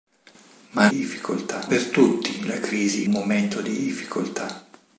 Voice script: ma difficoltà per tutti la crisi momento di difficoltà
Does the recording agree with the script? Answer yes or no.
yes